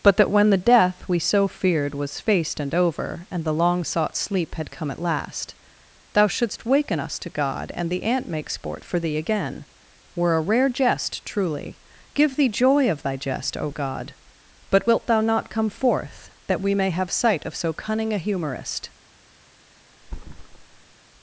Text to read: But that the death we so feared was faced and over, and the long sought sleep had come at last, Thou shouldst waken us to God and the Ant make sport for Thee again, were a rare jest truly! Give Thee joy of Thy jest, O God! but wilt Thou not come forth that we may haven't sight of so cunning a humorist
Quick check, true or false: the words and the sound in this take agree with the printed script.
false